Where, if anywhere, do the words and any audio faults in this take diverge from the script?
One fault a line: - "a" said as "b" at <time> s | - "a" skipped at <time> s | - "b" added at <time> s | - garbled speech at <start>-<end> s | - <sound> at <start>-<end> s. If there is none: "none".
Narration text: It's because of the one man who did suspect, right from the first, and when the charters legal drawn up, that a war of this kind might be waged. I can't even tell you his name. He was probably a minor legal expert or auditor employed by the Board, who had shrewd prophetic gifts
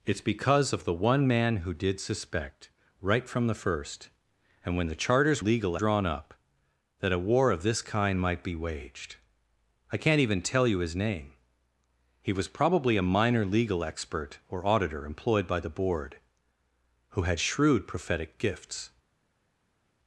none